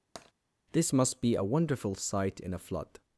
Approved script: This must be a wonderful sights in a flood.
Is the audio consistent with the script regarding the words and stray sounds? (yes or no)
no